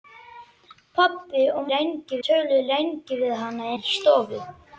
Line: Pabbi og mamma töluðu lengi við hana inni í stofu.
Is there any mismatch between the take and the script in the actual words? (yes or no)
yes